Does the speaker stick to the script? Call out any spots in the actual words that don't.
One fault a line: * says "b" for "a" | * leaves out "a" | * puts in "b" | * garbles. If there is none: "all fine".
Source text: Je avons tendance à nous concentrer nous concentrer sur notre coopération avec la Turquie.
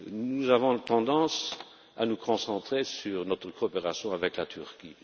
* says "Nous" for "Je"
* leaves out "nous concentrer"